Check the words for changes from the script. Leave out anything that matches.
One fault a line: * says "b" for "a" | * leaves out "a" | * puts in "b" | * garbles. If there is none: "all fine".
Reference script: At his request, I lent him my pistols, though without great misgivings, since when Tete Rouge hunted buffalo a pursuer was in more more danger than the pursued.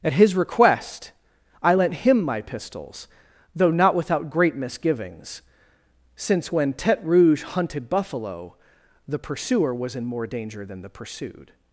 * puts in "not"
* says "the" for "a"
* leaves out "more"